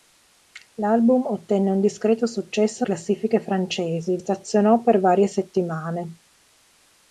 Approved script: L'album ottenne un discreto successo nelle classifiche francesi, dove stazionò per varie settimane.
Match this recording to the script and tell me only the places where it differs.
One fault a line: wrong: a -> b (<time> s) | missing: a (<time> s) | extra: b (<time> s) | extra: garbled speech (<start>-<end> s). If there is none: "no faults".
missing: nelle (2.9 s)
missing: dove (4.2 s)